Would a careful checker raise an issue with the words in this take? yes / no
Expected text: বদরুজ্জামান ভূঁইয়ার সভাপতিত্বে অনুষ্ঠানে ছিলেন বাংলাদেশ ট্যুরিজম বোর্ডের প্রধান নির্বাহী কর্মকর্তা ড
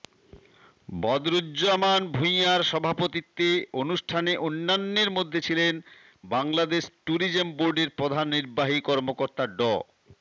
yes